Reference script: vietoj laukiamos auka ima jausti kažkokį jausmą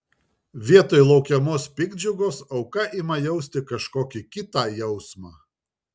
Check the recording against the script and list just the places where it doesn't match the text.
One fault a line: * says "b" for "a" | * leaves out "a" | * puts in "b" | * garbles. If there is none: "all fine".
* puts in "piktdžiugos"
* puts in "kitą"